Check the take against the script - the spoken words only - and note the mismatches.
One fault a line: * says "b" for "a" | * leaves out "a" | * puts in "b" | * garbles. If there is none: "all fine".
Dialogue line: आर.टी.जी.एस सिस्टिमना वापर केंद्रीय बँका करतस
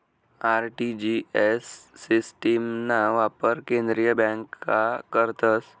all fine